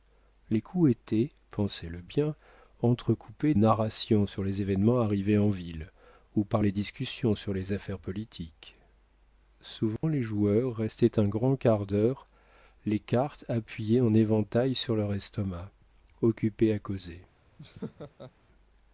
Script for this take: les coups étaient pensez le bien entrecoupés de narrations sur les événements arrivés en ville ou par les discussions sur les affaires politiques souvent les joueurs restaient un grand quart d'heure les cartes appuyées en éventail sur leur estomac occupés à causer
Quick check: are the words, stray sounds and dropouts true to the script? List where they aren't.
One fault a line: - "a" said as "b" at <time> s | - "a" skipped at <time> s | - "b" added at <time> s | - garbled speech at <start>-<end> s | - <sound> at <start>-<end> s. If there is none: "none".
- "de" skipped at 3.5 s
- dropout at 10.0-10.0 s
- laugh at 17.6-18.3 s